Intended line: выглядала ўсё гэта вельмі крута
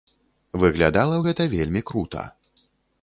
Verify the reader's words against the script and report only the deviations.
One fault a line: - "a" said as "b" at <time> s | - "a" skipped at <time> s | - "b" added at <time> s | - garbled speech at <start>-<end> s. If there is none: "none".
- "ўсё" skipped at 1.2 s